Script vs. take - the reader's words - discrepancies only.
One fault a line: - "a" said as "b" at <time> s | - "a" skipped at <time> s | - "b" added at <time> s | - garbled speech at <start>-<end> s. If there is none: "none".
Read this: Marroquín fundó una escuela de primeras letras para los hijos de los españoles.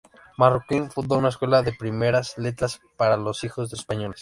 - "los" skipped at 3.8 s